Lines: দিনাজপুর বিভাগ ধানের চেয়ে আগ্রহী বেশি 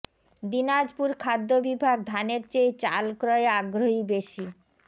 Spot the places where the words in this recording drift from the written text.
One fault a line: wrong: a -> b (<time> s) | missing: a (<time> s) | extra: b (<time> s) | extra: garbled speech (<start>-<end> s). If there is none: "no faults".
extra: খাদ্য (1.2 s)
extra: চাল ক্রয়ে (2.8 s)